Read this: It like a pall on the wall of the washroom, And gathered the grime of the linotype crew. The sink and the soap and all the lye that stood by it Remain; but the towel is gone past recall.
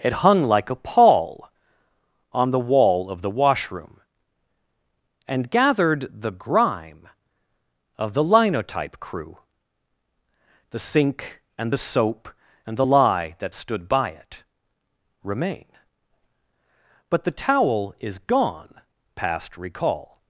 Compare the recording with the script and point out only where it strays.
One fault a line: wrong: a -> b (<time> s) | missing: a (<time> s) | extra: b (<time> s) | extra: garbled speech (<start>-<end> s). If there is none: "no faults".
extra: hung (0.1 s)
missing: all (12.8 s)